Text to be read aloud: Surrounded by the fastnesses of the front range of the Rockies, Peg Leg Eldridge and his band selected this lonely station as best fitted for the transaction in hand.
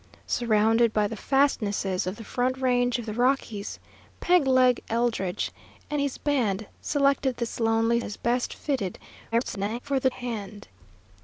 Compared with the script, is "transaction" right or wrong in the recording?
wrong